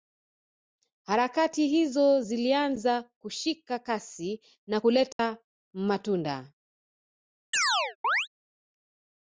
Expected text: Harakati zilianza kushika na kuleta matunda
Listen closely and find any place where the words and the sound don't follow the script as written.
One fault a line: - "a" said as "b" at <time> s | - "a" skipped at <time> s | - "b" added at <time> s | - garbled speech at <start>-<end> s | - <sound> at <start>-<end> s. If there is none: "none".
- "hizo" added at 1.7 s
- "kasi" added at 3.8 s
- dropout at 5.1-5.2 s
- chirp at 7.5-8.3 s